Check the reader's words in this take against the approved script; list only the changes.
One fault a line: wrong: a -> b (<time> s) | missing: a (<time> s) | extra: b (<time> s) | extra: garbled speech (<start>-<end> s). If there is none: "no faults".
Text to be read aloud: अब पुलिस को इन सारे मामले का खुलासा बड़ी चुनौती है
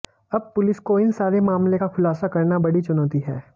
extra: करना (2.3 s)